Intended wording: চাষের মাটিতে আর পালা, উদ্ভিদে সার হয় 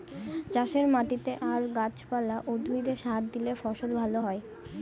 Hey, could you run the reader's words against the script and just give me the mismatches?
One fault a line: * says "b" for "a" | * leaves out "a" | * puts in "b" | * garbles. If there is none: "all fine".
* puts in "গাছ"
* puts in "দিলে ফসল ভালো"